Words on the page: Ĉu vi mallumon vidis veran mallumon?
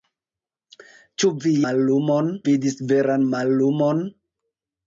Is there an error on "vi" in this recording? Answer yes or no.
no